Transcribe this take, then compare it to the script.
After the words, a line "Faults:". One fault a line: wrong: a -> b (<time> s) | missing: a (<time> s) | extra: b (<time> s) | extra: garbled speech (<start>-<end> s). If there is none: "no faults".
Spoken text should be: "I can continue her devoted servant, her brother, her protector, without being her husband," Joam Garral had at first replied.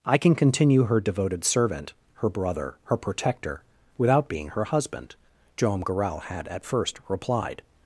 "I can continue her devoted servant, her brother, her protector, without being her husband," Joam Garral had at first replied.
Faults:
no faults